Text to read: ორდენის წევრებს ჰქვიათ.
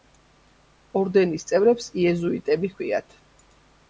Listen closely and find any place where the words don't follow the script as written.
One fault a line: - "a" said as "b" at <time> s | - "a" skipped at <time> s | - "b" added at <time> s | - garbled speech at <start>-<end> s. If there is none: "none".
- "იეზუიტები" added at 2.0 s